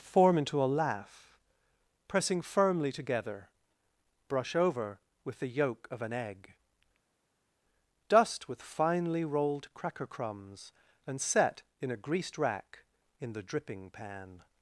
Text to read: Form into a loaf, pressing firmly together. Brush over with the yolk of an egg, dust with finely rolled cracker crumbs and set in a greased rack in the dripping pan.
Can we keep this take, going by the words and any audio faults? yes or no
no